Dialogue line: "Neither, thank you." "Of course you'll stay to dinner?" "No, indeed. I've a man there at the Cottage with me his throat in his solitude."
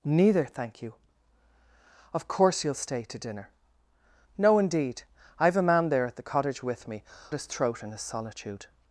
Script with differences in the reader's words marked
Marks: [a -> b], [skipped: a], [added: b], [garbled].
"Neither, thank you." "Of course you'll stay to dinner?" "No, indeed. I've a man there at the Cottage with me his throat in his solitude."